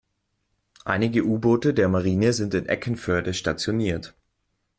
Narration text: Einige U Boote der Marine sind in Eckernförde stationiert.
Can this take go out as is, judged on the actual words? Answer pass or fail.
pass